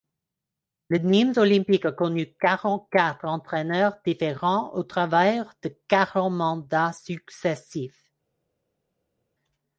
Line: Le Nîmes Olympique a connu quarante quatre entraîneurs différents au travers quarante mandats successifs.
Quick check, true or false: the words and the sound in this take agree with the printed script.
false